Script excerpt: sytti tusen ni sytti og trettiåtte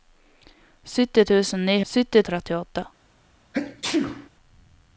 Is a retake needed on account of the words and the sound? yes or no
yes